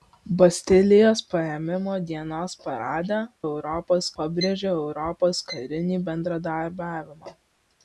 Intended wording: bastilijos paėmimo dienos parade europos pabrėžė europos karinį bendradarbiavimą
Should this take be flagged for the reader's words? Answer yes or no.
no